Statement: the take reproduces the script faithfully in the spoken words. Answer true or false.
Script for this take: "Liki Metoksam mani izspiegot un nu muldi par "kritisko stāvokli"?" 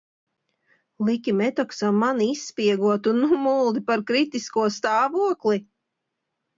true